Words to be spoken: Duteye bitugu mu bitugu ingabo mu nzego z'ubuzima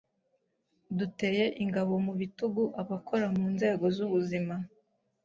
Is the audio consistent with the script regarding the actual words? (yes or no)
no